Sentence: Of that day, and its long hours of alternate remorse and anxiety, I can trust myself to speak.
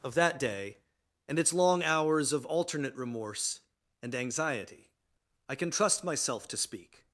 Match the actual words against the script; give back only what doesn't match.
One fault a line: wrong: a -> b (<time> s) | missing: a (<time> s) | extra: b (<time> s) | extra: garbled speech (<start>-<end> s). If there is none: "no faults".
no faults